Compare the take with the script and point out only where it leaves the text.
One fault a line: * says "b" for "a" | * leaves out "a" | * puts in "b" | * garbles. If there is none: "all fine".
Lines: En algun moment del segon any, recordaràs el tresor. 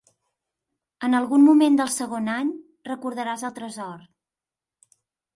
all fine